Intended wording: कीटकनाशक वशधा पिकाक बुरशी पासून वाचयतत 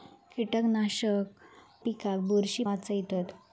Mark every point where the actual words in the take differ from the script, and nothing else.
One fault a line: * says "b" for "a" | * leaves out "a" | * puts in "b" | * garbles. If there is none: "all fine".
* leaves out "वशधा"
* leaves out "पासून"